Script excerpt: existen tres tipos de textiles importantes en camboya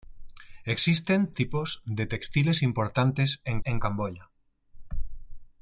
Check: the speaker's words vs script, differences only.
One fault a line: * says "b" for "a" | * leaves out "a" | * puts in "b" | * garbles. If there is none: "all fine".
* leaves out "tres"
* puts in "en"